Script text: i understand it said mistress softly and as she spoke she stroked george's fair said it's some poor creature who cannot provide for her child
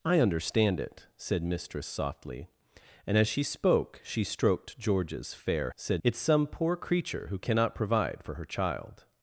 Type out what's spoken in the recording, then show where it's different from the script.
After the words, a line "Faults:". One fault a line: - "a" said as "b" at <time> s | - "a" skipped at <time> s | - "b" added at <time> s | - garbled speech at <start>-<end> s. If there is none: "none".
i understand it said mistress softly and as she spoke she stroked george's fair said it's some poor creature who cannot provide for her child
Faults:
none